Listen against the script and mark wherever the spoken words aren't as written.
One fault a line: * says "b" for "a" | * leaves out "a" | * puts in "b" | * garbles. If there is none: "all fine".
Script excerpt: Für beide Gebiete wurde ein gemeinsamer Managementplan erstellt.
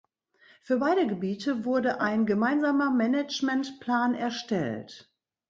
all fine